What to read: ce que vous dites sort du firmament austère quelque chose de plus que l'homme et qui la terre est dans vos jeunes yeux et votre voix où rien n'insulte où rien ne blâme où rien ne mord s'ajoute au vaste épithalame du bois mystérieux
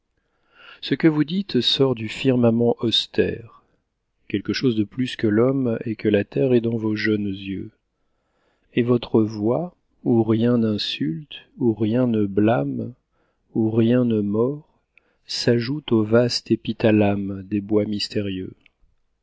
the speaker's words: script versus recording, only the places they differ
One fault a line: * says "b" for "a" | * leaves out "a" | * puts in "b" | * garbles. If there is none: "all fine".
* says "que" for "qui"
* says "des" for "du"